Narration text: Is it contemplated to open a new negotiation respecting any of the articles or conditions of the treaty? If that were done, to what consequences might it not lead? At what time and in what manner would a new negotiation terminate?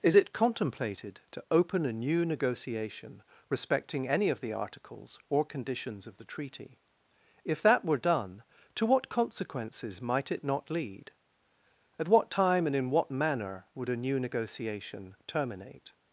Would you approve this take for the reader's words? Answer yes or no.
yes